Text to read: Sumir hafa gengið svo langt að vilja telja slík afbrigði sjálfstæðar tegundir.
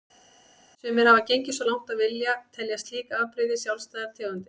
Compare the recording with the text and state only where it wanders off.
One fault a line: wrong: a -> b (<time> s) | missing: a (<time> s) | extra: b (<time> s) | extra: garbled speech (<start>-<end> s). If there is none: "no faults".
no faults